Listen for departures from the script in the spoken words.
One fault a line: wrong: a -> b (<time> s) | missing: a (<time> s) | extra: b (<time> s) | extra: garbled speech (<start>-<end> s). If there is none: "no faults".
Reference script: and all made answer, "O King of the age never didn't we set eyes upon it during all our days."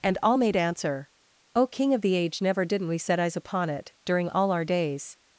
no faults